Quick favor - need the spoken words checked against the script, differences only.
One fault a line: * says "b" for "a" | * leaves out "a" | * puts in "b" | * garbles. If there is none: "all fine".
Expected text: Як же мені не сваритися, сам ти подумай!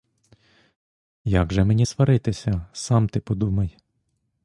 * leaves out "не"